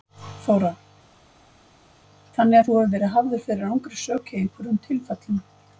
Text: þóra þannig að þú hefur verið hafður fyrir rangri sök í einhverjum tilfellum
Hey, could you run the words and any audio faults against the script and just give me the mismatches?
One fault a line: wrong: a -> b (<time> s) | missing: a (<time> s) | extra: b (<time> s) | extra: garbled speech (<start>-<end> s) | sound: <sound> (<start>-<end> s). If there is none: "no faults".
no faults